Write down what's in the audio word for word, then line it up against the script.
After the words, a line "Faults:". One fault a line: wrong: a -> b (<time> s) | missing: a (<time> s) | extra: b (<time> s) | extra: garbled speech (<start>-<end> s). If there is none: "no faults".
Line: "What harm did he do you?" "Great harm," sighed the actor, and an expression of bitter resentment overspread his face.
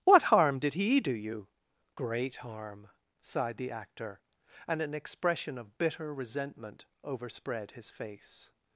"What harm did he do you?" "Great harm," sighed the actor, and an expression of bitter resentment overspread his face.
Faults:
no faults